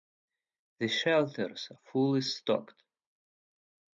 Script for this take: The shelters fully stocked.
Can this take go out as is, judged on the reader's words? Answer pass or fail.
pass